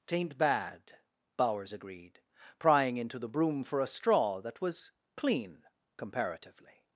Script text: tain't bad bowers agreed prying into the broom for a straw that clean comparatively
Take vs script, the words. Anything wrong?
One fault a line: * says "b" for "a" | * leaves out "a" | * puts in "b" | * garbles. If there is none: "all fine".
* puts in "was"